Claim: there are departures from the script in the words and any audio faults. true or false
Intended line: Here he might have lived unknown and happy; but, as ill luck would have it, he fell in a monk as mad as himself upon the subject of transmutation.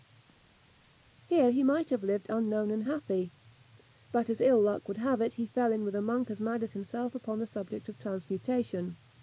true